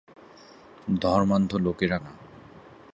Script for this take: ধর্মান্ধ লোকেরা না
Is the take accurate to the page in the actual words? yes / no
yes